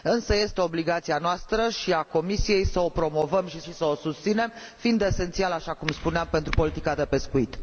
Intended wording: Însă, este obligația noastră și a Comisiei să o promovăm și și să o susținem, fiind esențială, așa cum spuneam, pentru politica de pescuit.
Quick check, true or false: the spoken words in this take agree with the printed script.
true